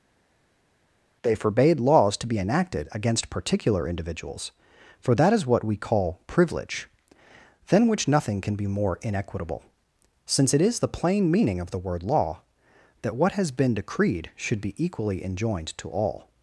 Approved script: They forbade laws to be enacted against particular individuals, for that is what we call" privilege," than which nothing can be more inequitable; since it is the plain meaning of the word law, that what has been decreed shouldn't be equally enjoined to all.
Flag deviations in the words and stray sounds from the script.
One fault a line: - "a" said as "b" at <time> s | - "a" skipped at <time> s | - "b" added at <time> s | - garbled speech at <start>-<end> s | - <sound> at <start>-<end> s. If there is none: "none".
- "shouldn't" said as "should" at 14.4 s